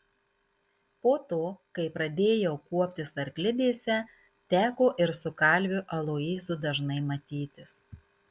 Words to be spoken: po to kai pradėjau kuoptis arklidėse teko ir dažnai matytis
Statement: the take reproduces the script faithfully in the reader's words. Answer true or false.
false